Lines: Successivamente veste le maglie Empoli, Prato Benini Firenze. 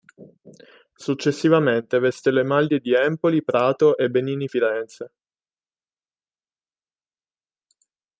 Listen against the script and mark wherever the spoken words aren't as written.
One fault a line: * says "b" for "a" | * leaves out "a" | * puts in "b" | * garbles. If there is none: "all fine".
* puts in "di"
* puts in "e"